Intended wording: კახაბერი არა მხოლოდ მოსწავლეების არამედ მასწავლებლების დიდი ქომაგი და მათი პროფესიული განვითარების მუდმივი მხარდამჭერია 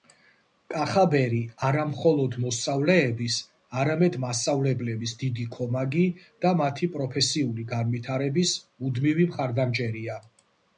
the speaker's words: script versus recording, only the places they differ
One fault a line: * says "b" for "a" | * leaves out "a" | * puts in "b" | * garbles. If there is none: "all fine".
all fine